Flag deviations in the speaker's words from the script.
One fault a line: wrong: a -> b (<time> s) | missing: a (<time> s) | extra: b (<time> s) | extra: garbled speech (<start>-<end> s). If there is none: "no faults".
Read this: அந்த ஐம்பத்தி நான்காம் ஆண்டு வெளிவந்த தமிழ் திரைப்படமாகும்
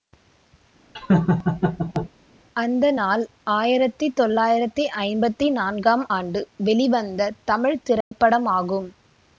extra: நாள் ஆயிரத்தி தொள்ளாயிரத்தி (3.0 s)